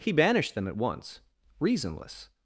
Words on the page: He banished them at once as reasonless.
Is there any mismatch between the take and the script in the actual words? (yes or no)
yes